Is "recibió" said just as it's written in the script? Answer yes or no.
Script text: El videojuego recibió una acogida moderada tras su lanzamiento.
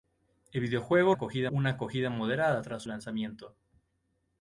no